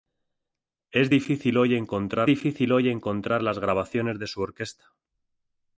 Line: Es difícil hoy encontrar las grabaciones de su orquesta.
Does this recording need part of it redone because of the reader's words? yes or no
yes